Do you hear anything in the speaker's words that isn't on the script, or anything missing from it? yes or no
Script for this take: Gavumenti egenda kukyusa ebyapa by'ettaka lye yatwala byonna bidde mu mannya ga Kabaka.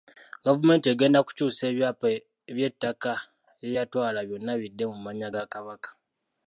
no